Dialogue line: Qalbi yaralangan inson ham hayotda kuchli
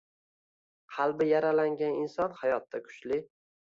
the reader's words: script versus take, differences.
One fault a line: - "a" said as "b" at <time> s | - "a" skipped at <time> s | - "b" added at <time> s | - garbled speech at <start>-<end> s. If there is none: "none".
- "ham" skipped at 2.4 s